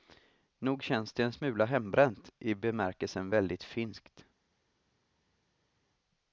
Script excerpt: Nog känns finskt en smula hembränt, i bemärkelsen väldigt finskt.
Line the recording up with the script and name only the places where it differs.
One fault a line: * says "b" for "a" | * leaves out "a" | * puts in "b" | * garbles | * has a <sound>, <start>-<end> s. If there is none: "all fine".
* says "det" for "finskt"